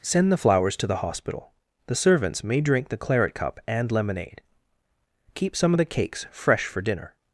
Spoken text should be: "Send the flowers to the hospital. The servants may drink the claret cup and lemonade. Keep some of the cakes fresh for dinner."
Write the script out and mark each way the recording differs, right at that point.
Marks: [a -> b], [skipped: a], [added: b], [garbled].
"Send the flowers to the hospital. The servants may drink the claret cup and lemonade. Keep some of the cakes fresh for dinner."